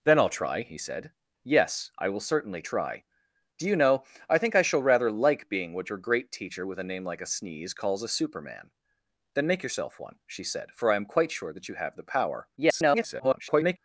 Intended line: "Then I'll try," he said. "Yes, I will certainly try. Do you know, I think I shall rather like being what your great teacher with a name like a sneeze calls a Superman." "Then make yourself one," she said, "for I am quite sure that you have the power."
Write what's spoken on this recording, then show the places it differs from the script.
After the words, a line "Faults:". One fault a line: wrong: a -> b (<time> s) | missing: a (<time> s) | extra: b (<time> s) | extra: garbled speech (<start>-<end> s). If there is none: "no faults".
"Then I'll try," he said. "Yes, I will certainly try. Do you know, I think I shall rather like being what your great teacher with a name like a sneeze calls a Superman." "Then make yourself one," she said, "for I am quite sure that you have the power." [garbled]
Faults:
extra: garbled speech (12.6-13.8 s)